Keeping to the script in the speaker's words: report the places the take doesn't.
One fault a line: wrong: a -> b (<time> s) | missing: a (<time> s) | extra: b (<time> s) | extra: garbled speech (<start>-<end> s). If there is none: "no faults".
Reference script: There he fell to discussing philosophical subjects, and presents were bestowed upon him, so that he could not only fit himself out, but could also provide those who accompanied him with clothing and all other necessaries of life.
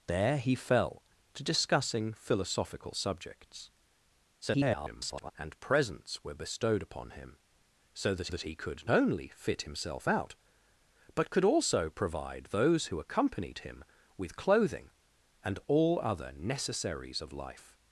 extra: garbled speech (4.4-5.3 s)
extra: that (8.3 s)
missing: not (8.9 s)